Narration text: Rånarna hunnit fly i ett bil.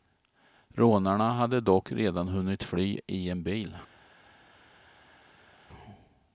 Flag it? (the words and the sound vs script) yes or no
yes